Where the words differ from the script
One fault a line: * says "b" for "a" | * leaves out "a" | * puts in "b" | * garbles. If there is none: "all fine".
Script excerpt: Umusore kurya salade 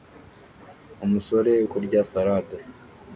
all fine